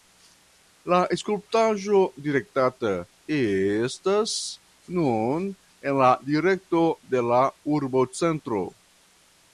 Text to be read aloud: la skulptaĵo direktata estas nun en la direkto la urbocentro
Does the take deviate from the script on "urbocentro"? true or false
false